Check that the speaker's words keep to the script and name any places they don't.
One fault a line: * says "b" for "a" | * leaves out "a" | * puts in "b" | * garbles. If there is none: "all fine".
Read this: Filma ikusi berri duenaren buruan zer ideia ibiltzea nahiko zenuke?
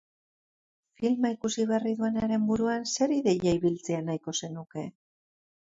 all fine